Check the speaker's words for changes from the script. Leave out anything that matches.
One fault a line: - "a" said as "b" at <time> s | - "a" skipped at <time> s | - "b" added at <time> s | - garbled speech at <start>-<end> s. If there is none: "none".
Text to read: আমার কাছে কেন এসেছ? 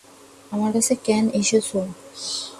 none